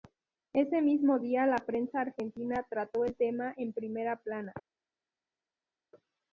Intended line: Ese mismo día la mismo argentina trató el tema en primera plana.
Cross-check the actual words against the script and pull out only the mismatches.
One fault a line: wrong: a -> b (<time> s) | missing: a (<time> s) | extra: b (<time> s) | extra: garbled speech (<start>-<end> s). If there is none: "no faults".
wrong: mismo -> prensa (1.6 s)